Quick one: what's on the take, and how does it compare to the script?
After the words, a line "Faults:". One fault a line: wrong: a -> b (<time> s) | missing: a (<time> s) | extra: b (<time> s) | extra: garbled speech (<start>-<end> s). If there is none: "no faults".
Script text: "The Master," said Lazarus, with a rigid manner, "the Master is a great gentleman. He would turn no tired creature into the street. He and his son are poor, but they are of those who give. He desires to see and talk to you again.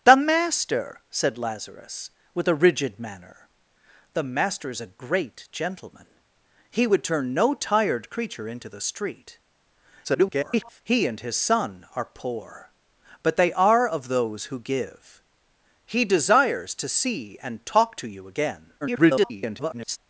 "The Master," said Lazarus, with a rigid manner, "the Master is a great gentleman. He would turn no tired creature into the street. [garbled] He and his son are poor, but they are of those who give. He desires to see and talk to you again. [garbled]
Faults:
extra: garbled speech (10.0-10.8 s)
extra: garbled speech (18.8-20.0 s)